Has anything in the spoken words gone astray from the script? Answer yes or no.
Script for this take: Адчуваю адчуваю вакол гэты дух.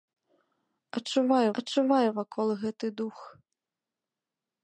no